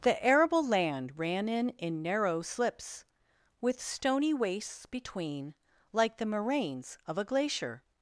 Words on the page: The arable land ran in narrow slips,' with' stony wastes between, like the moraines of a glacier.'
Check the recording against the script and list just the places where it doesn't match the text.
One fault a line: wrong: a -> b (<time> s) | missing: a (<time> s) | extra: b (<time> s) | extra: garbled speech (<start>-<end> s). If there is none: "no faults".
extra: in (1.8 s)